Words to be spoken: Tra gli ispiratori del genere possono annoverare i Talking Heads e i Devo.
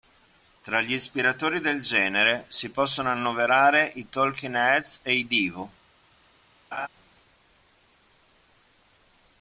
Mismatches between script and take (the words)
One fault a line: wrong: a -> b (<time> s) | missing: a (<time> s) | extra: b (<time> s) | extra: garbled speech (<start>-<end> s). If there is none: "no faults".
extra: si (2.5 s)